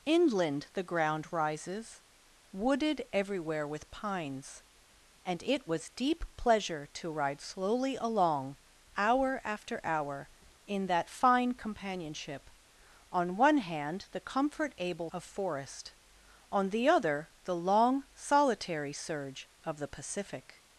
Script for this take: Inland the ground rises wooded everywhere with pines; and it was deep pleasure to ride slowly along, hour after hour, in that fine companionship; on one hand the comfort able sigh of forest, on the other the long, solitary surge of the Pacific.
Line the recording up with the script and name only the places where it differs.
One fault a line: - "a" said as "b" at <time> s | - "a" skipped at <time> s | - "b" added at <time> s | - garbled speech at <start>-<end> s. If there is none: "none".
- "sigh" skipped at 15.1 s